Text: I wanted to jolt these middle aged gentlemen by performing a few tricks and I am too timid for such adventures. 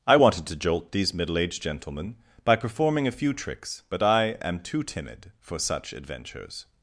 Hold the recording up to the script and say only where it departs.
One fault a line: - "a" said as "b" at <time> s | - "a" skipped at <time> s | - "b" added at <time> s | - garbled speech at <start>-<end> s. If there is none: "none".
- "and" said as "but" at 3.9 s